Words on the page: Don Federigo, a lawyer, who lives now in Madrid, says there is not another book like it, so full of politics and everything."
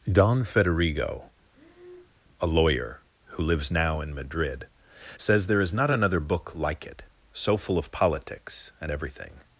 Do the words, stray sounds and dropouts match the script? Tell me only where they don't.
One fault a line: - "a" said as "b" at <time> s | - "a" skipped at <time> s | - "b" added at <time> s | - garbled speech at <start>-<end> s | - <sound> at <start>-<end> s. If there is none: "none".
- breath at 1.5-2.2 s